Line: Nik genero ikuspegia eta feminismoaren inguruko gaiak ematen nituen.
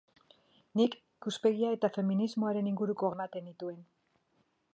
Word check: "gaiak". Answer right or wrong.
wrong